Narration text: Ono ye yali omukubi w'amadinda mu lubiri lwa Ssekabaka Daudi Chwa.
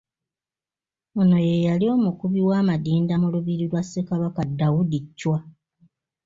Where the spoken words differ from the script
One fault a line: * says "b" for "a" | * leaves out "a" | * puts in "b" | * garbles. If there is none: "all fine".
all fine